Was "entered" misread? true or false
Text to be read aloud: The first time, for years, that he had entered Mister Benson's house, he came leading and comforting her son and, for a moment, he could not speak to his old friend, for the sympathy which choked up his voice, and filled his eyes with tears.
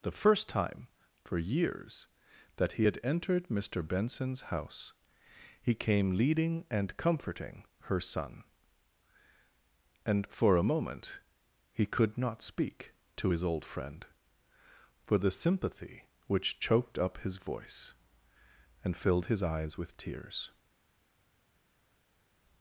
false